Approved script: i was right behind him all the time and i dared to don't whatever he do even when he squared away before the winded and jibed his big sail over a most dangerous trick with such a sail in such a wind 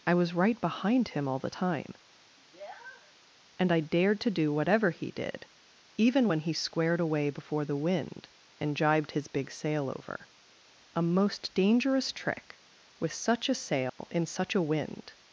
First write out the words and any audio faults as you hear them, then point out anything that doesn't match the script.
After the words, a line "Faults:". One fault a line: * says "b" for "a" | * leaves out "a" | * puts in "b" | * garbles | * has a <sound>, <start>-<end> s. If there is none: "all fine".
i was right behind him all the time and i dared to do whatever he did even when he squared away before the wind and jibed his big sail over a most dangerous trick with such a sail in such a wind
Faults:
* has a sniff, 2.4-3.2 s
* says "do" for "don't"
* says "did" for "do"
* says "wind" for "winded"
* has a dropout, 13.9-14.0 s